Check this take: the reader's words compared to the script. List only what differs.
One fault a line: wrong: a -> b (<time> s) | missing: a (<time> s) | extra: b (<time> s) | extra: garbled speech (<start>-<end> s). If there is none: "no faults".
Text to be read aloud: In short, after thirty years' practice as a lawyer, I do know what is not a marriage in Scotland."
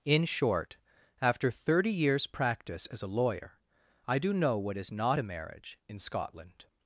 no faults